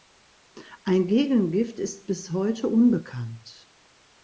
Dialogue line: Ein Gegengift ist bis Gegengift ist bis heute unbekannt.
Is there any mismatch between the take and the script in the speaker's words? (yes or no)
yes